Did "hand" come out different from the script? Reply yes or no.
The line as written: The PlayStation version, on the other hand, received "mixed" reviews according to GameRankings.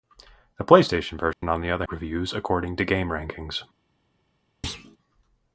yes